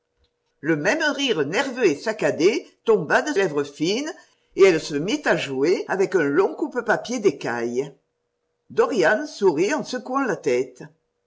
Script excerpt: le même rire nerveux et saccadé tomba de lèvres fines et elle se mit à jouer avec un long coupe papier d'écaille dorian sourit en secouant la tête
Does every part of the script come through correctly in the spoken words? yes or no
yes